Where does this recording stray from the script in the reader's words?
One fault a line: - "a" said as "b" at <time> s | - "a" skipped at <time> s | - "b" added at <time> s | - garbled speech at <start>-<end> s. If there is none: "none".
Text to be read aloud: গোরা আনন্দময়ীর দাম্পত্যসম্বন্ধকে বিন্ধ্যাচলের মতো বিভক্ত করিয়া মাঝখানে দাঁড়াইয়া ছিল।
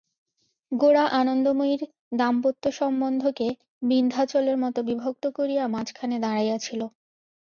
none